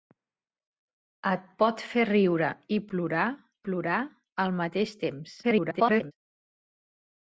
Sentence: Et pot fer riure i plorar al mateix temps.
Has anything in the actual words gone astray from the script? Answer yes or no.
yes